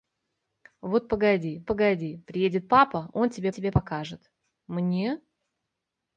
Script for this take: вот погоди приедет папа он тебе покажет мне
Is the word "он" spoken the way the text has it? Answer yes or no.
yes